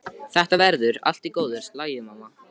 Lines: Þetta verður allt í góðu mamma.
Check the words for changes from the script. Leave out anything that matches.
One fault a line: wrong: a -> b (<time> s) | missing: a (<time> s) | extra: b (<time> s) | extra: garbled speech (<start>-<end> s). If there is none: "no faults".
extra: lagi (1.8 s)